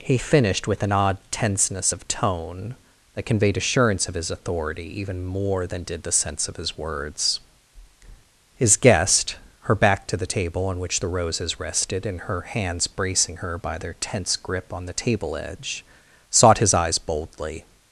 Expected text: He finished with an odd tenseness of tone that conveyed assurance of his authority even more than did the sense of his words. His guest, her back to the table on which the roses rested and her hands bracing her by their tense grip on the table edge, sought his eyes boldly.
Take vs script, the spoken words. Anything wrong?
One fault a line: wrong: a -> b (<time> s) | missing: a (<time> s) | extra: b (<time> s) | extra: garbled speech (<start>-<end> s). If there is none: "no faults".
no faults